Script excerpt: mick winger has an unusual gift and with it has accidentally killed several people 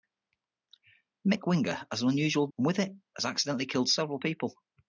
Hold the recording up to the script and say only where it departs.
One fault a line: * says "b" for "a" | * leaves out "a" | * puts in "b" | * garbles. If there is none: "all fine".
* leaves out "gift"